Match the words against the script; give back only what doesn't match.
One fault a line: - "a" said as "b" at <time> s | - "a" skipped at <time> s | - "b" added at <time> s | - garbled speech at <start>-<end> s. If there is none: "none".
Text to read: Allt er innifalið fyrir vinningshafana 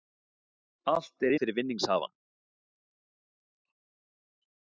- "innifalið" skipped at 1.3 s